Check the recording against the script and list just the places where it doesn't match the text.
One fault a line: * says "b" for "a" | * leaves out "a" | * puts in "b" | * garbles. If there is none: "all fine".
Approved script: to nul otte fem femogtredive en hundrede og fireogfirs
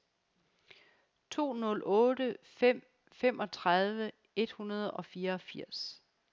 * says "et" for "en"